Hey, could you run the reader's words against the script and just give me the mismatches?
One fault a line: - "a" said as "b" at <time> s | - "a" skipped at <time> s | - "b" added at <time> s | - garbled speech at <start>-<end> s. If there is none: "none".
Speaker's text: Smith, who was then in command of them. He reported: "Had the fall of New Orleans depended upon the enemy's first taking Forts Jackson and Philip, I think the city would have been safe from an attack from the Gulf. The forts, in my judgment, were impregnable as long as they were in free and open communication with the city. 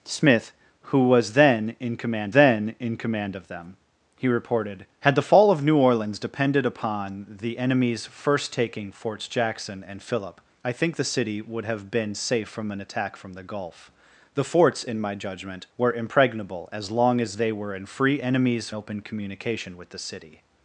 - "then in command" added at 2.3 s
- "and" said as "enemy's" at 18.2 s